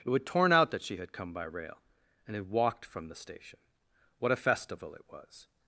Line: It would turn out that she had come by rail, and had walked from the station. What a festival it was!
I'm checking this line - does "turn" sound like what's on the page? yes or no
no